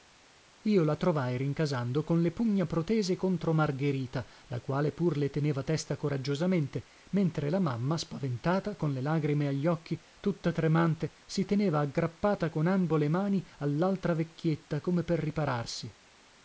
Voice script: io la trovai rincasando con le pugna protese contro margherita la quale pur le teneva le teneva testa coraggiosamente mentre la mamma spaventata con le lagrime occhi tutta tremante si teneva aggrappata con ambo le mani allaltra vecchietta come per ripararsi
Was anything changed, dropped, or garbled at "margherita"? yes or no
no